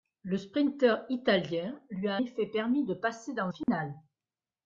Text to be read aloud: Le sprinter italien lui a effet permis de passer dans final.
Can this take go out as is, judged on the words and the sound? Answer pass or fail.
fail